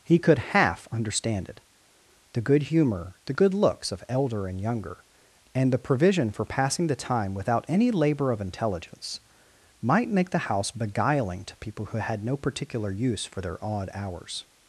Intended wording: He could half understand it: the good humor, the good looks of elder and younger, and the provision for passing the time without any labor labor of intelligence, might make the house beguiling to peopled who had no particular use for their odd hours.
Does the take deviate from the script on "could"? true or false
false